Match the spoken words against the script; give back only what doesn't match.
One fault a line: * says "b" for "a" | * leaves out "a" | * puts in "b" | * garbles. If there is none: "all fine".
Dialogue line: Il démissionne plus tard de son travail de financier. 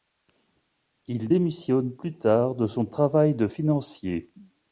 all fine